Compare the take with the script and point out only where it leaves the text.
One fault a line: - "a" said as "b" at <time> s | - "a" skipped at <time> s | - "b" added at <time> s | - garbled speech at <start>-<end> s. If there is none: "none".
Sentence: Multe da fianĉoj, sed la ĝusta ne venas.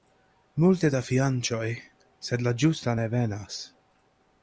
none